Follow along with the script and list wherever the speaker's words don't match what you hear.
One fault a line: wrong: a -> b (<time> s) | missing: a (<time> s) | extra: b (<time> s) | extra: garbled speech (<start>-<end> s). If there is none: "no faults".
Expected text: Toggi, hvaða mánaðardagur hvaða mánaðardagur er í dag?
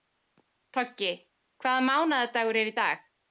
missing: hvaða mánaðardagur (2.6 s)